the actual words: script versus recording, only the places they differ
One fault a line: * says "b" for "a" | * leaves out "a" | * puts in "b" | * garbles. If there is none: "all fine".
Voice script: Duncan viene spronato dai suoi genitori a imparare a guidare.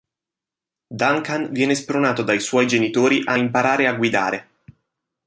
all fine